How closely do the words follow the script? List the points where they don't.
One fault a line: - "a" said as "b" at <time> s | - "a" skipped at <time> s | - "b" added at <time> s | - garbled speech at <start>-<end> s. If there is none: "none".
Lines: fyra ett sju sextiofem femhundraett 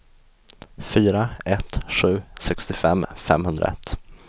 none